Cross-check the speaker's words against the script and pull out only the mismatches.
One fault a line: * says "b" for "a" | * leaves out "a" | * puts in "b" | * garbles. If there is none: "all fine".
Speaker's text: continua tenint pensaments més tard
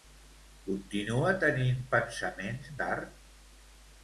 * leaves out "més"